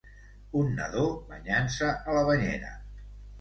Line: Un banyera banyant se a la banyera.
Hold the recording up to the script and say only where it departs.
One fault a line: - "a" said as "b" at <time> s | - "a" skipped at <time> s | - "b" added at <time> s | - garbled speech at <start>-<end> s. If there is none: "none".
- "banyera" said as "nadó" at 0.8 s